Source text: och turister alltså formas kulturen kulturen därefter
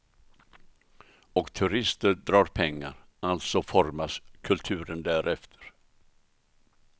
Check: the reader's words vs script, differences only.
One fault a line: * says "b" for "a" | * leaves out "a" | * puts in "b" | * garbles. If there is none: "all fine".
* puts in "drar pengar"
* leaves out "kulturen"